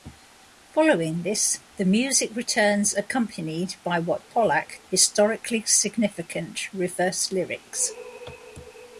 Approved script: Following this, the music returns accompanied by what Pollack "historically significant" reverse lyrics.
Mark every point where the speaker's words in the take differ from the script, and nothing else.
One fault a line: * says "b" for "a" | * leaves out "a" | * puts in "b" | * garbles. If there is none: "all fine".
all fine